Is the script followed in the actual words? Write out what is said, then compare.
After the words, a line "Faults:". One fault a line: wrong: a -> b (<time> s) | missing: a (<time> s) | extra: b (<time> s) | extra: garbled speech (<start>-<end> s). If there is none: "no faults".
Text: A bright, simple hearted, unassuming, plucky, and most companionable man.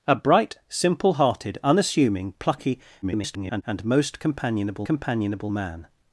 A bright, simple hearted, unassuming, plucky, [garbled] and most companionable companionable man.
Faults:
extra: garbled speech (3.0-3.6 s)
extra: companionable (4.8 s)